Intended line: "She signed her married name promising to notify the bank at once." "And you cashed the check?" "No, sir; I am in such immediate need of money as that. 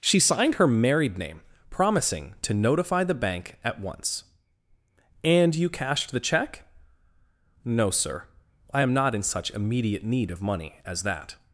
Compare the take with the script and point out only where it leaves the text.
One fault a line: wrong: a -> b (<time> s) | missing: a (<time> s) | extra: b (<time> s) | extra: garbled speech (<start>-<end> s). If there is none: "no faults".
extra: not (8.9 s)